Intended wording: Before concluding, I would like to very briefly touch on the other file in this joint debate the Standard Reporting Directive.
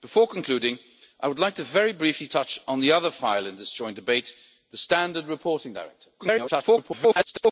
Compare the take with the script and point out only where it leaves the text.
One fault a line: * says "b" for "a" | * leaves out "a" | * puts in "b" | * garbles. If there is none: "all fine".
* garbles